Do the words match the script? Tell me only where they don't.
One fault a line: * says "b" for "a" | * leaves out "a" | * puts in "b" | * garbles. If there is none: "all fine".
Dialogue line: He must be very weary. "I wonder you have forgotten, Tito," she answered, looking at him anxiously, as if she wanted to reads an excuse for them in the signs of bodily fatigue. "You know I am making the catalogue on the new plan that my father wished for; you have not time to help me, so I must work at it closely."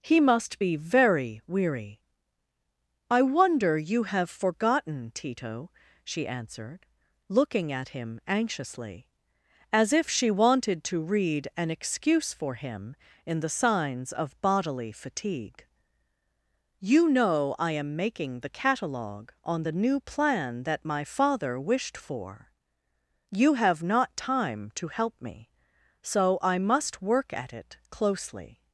* says "read" for "reads"
* says "him" for "them"